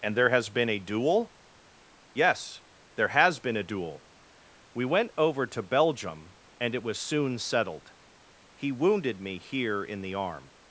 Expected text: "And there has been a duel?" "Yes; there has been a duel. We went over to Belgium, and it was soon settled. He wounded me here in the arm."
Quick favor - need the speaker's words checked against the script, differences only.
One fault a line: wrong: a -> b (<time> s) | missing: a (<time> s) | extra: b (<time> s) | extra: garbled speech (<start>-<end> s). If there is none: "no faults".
no faults